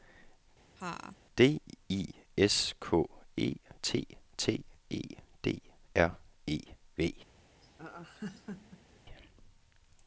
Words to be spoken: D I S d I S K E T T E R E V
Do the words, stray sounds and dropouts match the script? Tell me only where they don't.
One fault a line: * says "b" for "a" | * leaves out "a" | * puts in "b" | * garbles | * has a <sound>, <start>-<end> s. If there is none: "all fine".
* has a laugh, 0.8-1.2 s
* leaves out "d I S"
* puts in "D"
* has a laugh, 7.6-9.0 s